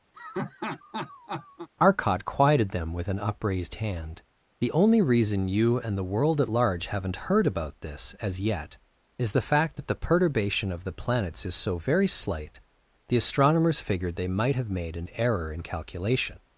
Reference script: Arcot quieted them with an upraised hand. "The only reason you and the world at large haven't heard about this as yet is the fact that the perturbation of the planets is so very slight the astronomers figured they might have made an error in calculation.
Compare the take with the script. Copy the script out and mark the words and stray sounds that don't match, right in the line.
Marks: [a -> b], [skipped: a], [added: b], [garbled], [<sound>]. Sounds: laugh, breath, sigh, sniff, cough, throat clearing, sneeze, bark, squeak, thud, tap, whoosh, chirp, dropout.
[laugh] Arcot quieted them with an upraised hand. "The only reason you and the world at large haven't heard about this as yet is the fact that the perturbation of the planets is so very slight the astronomers figured they might have made an error in calculation.